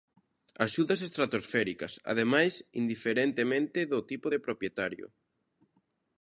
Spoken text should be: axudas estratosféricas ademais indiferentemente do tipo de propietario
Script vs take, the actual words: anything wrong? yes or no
no